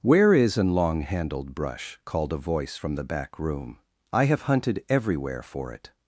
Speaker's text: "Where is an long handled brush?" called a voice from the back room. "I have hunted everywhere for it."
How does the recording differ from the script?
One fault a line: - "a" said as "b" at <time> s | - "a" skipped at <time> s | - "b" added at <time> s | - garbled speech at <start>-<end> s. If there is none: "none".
none